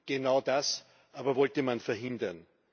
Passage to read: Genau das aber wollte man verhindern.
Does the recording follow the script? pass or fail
pass